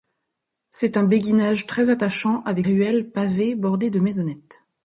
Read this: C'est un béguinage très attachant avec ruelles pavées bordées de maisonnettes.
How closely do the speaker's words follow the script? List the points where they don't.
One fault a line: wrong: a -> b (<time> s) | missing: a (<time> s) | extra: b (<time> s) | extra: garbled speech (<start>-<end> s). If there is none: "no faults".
no faults